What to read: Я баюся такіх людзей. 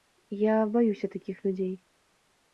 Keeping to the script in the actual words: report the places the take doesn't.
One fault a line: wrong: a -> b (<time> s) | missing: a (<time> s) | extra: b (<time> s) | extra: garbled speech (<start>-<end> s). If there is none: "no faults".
no faults